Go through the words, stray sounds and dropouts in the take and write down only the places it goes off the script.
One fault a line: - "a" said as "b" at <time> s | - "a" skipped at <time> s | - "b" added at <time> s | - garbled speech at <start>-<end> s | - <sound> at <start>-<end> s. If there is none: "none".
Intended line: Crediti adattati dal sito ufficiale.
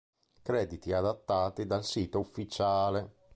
none